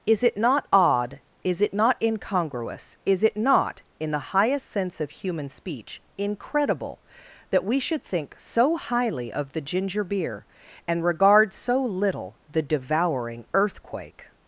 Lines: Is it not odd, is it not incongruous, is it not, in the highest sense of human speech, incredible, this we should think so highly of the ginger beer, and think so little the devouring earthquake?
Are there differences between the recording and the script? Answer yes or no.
yes